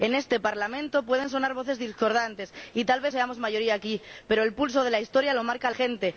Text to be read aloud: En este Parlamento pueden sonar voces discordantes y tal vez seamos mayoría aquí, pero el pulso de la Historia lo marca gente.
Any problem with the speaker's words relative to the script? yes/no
no